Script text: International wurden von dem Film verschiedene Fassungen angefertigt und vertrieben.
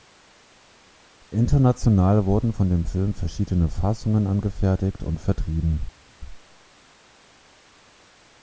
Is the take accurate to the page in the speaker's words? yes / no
yes